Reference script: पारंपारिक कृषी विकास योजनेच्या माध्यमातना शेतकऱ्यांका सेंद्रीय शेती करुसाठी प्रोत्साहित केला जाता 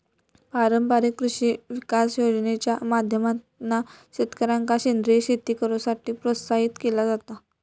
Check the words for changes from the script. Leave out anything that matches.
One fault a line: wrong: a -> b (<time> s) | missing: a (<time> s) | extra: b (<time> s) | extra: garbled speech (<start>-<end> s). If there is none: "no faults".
no faults